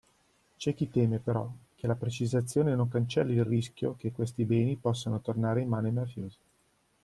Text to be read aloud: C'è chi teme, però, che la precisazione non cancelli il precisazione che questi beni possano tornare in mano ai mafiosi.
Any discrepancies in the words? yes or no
yes